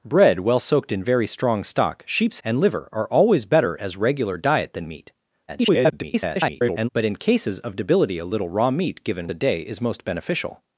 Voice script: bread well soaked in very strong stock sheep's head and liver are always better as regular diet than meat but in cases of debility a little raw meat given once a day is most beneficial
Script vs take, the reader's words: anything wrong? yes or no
yes